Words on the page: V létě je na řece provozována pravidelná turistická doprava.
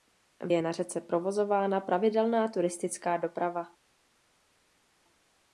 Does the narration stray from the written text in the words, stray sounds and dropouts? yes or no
yes